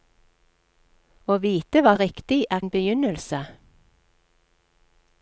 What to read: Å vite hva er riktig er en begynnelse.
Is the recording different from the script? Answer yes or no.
no